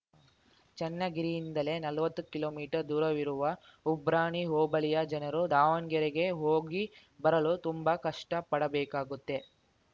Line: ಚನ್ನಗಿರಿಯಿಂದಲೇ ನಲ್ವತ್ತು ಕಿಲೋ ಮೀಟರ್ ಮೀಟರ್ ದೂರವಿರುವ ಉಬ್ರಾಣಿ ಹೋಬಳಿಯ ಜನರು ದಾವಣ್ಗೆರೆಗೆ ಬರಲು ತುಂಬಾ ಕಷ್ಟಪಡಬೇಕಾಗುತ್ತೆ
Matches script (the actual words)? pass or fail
fail